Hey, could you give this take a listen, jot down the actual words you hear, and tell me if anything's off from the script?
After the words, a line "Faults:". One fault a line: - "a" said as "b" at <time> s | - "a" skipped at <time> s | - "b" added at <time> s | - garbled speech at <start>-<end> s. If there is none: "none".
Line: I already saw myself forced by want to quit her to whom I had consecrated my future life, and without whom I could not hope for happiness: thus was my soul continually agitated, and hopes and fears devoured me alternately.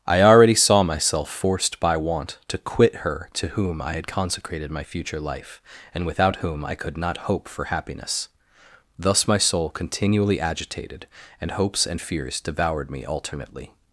I already saw myself forced by want to quit her to whom I had consecrated my future life, and without whom I could not hope for happiness: thus my soul continually agitated, and hopes and fears devoured me alternately.
Faults:
- "was" skipped at 9.3 s